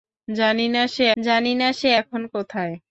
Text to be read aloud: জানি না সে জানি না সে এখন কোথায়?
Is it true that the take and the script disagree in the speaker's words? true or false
false